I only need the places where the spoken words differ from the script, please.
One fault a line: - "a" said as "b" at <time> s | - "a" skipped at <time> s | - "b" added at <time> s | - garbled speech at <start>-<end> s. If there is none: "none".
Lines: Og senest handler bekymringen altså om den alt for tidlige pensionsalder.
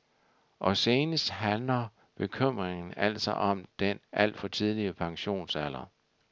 none